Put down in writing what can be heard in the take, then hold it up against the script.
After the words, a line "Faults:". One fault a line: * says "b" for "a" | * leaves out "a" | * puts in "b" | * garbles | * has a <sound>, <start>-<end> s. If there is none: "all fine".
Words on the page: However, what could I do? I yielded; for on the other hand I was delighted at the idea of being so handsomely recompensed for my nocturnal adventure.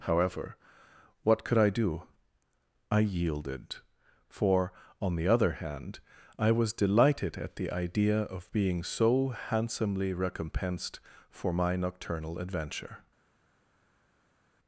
However, what could I do? I yielded; for on the other hand I was delighted at the idea of being so handsomely recompensed for my nocturnal adventure.
Faults:
all fine